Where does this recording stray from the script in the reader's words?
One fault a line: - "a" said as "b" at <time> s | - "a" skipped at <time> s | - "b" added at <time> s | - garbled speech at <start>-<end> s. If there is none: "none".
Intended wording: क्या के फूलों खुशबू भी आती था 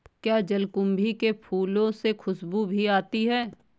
- "जलकुंभी" added at 0.4 s
- "से" added at 1.9 s
- "था" said as "है" at 3.2 s